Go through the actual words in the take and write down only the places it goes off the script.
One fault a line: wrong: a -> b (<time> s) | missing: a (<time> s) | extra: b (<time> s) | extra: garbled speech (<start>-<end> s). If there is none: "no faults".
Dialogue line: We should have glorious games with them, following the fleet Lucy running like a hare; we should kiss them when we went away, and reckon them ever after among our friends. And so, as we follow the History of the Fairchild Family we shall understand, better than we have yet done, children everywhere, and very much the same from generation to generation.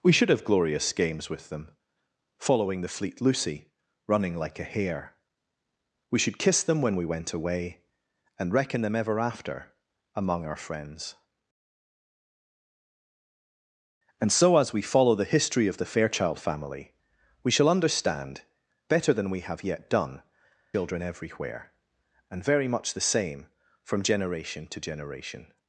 no faults